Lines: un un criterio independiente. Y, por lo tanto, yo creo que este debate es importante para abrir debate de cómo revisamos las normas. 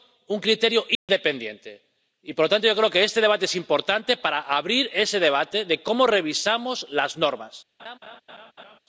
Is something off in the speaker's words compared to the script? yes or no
yes